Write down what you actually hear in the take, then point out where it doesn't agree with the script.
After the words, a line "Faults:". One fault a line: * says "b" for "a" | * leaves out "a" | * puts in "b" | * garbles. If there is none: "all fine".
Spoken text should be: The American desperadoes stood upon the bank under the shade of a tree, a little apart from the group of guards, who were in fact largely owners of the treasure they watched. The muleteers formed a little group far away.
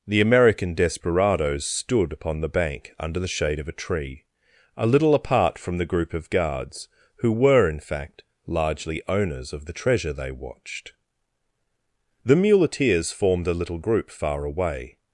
The American desperadoes stood upon the bank under the shade of a tree, a little apart from the group of guards, who were in fact largely owners of the treasure they watched. The muleteers formed a little group far away.
Faults:
all fine